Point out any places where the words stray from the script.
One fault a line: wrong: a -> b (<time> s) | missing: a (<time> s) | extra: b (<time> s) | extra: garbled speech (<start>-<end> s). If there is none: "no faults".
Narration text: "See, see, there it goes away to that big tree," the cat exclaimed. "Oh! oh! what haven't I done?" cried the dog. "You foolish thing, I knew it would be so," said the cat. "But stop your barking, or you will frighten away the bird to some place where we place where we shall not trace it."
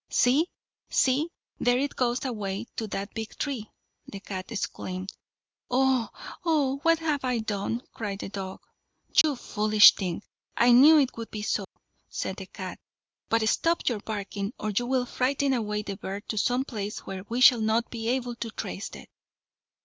wrong: haven't -> have (7.0 s)
wrong: place where we shall not -> shall not be able to (17.4 s)